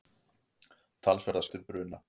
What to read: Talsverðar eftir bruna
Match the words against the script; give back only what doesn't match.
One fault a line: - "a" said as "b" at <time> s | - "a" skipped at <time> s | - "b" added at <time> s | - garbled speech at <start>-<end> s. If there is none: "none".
none